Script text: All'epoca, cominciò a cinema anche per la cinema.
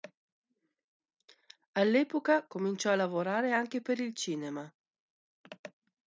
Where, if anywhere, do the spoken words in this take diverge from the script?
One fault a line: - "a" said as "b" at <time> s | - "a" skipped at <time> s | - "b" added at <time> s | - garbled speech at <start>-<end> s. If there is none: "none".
- "cinema" said as "lavorare" at 3.0 s
- "la" said as "il" at 4.0 s